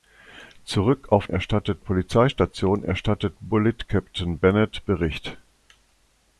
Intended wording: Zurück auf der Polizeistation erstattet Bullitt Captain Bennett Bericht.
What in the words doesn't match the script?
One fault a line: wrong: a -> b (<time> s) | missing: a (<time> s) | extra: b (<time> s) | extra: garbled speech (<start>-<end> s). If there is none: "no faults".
wrong: der -> erstattet (1.3 s)